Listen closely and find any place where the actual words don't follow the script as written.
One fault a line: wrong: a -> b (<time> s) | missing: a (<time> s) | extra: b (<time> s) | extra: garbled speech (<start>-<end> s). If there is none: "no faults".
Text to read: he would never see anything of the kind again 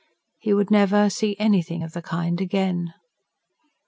no faults